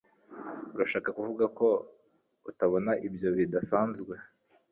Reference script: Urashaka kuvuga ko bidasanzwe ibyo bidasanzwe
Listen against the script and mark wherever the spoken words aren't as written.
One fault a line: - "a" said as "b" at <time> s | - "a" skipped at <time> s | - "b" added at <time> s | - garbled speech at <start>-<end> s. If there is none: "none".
- "bidasanzwe" said as "utabona" at 2.5 s